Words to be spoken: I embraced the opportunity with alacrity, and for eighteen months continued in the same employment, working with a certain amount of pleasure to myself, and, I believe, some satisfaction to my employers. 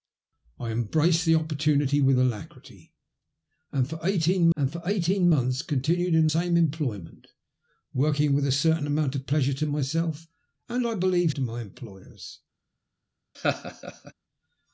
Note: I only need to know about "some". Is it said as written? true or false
false